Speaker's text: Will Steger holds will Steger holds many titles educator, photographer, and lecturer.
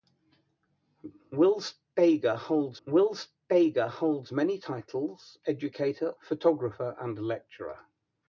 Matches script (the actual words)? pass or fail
pass